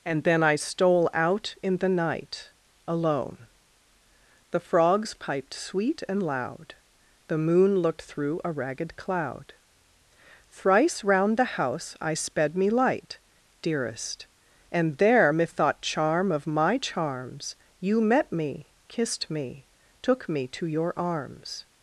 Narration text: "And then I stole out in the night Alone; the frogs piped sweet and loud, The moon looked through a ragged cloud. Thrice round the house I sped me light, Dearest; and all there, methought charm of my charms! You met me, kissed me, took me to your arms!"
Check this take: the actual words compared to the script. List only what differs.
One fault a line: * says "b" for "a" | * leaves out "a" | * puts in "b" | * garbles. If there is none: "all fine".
* leaves out "all"